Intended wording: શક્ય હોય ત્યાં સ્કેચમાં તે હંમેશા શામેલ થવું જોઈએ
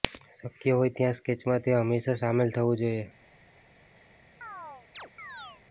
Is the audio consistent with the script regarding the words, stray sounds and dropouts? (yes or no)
no